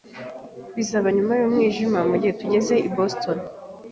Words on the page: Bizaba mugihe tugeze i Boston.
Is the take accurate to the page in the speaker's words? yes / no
no